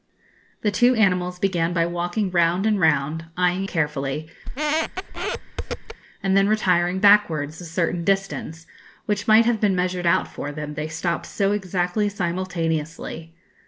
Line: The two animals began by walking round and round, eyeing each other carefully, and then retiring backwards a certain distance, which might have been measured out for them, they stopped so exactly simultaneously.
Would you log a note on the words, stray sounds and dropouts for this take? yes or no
yes